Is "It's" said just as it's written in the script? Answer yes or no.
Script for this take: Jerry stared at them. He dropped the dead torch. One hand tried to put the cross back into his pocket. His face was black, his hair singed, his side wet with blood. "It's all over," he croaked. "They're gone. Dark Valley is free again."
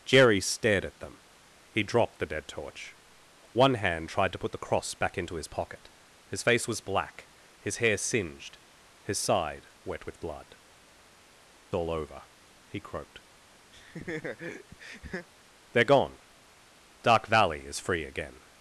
no